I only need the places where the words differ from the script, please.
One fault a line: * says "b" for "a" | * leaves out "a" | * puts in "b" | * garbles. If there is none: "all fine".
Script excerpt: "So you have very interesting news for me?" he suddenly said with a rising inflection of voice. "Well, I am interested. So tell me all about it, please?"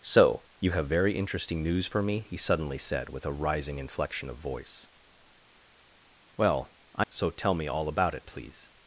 * leaves out "am interested"